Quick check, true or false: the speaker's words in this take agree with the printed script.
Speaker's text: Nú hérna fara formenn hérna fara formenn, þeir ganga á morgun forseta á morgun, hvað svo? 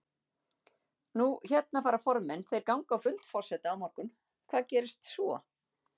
false